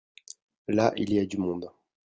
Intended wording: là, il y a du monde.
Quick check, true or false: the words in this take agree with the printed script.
true